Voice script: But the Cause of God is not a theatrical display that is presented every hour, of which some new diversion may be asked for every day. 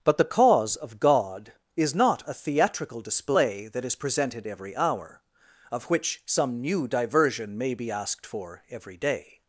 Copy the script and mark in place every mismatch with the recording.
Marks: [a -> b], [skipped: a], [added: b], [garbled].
But the Cause of God is not a theatrical display that is presented every hour, of which some new diversion may be asked for every day.